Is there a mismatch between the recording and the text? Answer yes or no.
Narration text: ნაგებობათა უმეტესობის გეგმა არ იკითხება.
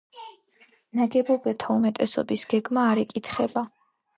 no